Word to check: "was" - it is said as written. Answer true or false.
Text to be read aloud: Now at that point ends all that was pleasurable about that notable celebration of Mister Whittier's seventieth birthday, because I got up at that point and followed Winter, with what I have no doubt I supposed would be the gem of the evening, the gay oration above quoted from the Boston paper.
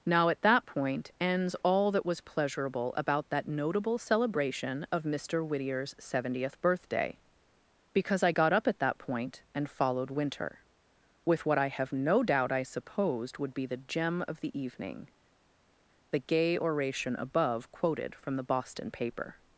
true